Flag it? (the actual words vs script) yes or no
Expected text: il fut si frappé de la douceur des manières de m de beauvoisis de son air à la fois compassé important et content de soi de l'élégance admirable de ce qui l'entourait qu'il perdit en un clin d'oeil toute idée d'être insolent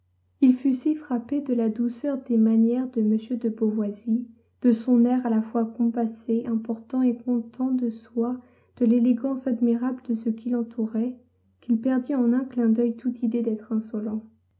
no